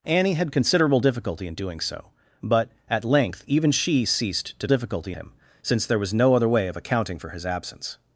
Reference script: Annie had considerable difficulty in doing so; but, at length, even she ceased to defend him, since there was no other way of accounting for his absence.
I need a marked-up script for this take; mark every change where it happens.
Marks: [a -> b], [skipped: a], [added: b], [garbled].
Annie had considerable difficulty in doing so; but, at length, even she ceased to [defend -> difficulty] him, since there was no other way of accounting for his absence.